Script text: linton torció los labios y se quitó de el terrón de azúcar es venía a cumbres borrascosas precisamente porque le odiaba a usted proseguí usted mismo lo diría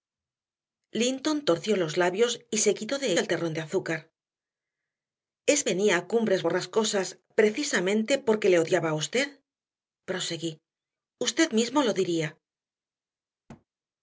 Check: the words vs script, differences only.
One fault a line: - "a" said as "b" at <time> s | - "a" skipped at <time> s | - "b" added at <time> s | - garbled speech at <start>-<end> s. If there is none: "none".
none